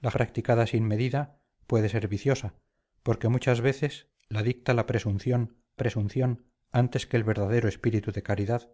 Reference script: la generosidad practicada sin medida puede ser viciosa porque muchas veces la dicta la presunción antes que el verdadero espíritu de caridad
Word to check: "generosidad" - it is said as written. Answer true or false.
false